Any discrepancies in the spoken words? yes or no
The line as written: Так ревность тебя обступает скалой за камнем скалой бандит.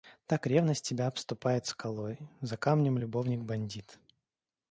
yes